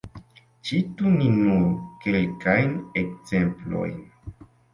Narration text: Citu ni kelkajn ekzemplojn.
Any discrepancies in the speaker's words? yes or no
yes